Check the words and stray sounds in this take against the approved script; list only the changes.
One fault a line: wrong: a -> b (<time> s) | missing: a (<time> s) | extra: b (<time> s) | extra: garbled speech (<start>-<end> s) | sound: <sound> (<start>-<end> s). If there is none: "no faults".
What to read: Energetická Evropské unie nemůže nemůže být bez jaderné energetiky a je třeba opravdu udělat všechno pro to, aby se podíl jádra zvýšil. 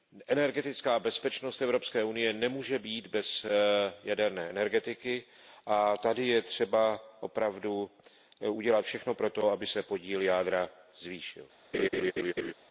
extra: bezpečnost (1.0 s)
missing: nemůže (2.8 s)
extra: tady (5.9 s)
sound: laugh (11.7-12.5 s)